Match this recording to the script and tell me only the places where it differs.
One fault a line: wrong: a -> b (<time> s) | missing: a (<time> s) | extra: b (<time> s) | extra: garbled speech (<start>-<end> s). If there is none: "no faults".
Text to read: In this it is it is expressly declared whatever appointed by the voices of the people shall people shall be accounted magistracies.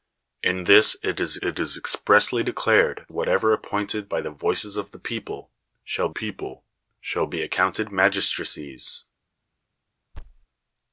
no faults